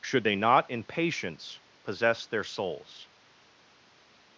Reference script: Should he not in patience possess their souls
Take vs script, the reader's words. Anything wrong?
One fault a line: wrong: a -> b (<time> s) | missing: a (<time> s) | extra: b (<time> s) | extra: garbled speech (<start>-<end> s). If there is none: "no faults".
wrong: he -> they (0.2 s)